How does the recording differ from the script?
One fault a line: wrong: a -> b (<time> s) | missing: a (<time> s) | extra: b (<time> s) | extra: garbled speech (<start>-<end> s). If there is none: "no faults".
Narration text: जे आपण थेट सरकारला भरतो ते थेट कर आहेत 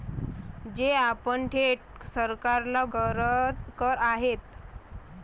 missing: भरतो ते थेट (2.8 s)